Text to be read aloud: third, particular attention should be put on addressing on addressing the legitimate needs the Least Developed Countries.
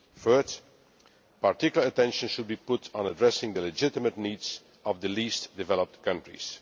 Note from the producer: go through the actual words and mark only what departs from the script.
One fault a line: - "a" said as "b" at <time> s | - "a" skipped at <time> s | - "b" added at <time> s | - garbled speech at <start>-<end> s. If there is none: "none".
- "on addressing" skipped at 3.6 s
- "of" added at 4.8 s